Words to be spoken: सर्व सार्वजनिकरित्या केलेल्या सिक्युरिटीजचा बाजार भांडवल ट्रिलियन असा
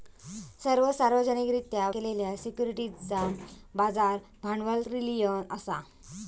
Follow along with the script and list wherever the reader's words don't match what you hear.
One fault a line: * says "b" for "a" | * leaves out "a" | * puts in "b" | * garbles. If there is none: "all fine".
all fine